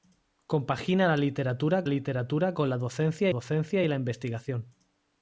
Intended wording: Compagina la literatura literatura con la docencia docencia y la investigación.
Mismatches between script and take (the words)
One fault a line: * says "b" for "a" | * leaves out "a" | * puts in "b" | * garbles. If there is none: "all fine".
all fine